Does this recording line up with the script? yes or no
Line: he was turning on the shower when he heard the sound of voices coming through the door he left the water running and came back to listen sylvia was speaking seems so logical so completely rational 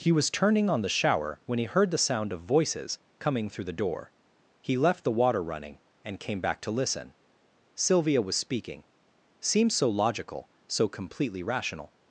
yes